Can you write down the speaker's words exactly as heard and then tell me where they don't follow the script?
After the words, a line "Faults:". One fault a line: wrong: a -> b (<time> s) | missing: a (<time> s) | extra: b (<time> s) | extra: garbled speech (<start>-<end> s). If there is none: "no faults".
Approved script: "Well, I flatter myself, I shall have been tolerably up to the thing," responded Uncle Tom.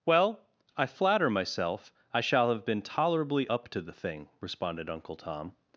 "Well, I flatter myself, I shall have been tolerably up to the thing," responded Uncle Tom.
Faults:
no faults